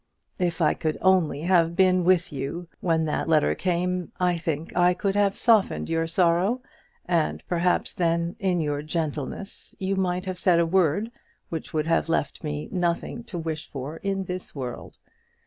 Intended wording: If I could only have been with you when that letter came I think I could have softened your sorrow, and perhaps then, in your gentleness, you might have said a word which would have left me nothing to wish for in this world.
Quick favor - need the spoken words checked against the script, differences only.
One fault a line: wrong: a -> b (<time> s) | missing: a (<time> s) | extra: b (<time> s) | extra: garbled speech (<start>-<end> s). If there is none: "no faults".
no faults